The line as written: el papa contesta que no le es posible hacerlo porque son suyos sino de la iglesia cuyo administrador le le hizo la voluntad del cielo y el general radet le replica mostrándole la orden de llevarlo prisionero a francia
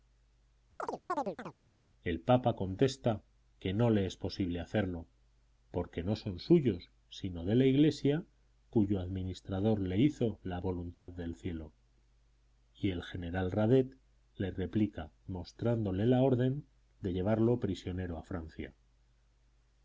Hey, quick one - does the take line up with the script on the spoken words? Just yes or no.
no